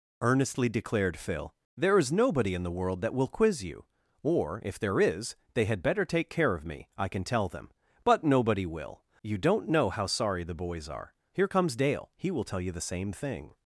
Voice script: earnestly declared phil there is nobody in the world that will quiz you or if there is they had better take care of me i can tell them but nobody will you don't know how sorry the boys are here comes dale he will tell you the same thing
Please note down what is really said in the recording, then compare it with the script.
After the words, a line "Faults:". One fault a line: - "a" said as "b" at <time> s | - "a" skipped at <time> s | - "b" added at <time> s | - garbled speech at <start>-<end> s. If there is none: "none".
earnestly declared phil there is nobody in the world that will quiz you or if there is they had better take care of me i can tell them but nobody will you don't know how sorry the boys are here comes dale he will tell you the same thing
Faults:
none